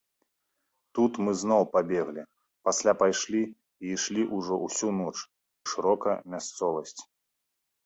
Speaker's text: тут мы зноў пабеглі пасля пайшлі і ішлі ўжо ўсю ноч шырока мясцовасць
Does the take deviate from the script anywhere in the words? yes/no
no